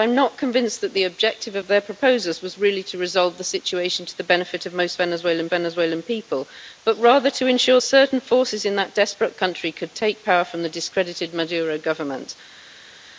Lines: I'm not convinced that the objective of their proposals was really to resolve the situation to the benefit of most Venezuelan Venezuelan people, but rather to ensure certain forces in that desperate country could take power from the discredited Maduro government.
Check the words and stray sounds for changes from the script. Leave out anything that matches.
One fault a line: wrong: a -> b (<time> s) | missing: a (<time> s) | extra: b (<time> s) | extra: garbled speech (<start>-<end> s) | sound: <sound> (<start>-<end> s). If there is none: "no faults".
no faults